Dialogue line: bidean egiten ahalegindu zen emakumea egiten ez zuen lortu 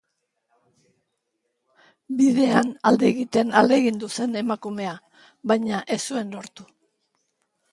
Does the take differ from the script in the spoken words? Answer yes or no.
yes